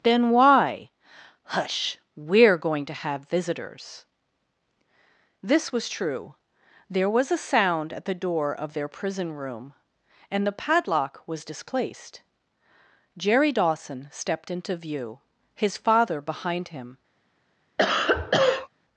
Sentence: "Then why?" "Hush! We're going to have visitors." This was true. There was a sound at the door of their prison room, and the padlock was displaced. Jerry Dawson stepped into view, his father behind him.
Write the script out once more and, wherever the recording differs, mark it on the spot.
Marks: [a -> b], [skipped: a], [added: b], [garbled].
"Then why?" "Hush! We're going to have visitors." This was true. There was a sound at the door of their prison room, and the padlock was displaced. Jerry Dawson stepped into view, his father behind him.